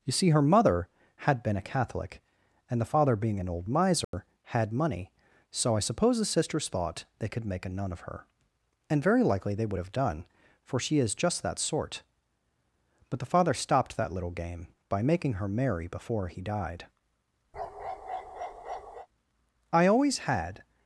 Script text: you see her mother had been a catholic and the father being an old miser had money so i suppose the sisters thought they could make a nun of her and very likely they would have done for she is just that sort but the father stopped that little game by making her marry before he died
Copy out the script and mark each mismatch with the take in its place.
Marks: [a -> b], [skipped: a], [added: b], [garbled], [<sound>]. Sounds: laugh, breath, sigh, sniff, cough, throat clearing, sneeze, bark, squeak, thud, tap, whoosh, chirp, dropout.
you see her mother had been a catholic and the father being an old miser [dropout] had money so i suppose the sisters thought they could make a nun of her and very likely they would have done for she is just that sort but the father stopped that little game by making her marry before he died [bark] [added: i always had]